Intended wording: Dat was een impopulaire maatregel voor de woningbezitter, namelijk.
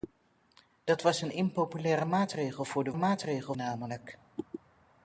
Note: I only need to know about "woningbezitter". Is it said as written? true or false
false